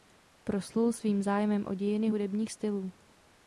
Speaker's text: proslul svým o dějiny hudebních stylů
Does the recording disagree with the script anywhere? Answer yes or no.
yes